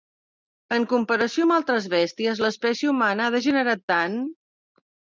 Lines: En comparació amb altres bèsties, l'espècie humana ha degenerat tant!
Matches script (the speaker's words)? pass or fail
pass